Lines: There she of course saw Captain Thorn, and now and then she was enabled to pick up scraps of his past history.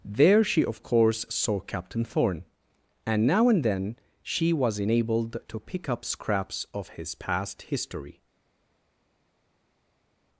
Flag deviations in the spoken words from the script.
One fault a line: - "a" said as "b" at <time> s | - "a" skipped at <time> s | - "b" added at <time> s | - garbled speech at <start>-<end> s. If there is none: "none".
none